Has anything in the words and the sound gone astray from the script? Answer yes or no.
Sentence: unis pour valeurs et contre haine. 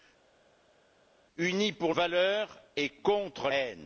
no